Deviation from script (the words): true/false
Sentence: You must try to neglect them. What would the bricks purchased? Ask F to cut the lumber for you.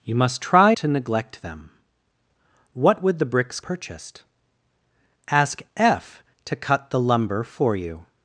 false